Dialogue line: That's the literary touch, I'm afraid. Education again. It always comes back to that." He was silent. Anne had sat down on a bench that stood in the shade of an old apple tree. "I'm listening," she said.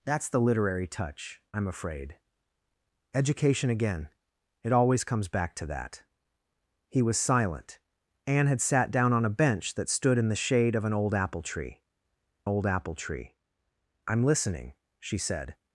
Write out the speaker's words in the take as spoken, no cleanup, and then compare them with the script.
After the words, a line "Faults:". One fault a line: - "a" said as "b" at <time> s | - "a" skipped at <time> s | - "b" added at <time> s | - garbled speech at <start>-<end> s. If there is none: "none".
That's the literary touch, I'm afraid. Education again. It always comes back to that." He was silent. Anne had sat down on a bench that stood in the shade of an old apple tree old apple tree. "I'm listening," she said.
Faults:
- "old apple tree" added at 12.4 s